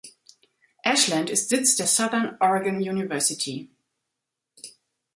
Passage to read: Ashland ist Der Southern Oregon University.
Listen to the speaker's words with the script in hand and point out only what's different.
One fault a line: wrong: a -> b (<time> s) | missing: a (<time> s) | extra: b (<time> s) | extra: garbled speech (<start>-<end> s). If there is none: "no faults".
extra: Sitz (1.5 s)